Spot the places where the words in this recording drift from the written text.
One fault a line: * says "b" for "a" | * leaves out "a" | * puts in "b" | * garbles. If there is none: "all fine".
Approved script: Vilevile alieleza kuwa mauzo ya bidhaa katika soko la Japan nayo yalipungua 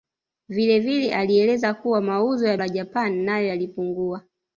* leaves out "bidhaa katika soko"